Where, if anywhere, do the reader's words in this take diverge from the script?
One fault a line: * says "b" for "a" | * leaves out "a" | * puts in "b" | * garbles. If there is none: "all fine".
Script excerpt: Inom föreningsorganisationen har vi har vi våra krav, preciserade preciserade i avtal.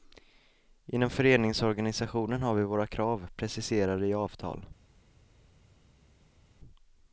* leaves out "har vi"
* leaves out "preciserade"